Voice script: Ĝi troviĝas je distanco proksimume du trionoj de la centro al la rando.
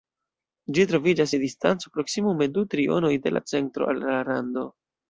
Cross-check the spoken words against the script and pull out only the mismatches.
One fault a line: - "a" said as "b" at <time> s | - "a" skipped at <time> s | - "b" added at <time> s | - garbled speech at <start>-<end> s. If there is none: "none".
none